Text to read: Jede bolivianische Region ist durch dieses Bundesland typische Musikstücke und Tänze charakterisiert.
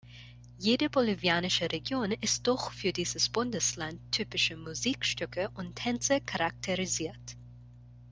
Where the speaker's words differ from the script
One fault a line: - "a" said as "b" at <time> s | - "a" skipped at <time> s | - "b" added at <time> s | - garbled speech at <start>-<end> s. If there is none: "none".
- "für" added at 2.7 s